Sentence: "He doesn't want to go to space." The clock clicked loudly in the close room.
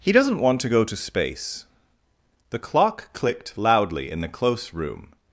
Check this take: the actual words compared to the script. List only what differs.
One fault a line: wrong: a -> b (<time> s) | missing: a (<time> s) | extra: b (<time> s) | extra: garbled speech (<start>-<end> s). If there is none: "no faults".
no faults